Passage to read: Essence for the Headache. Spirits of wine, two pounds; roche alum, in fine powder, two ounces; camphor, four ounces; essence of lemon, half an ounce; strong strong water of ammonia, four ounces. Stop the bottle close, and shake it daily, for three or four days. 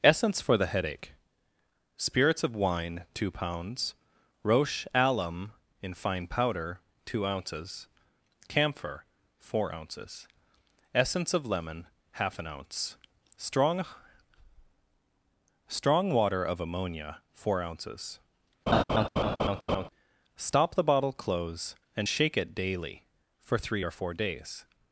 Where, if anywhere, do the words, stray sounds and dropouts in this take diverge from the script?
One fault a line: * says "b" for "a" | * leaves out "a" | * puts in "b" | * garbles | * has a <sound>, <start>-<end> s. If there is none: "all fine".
* has a laugh, 18.7-19.9 s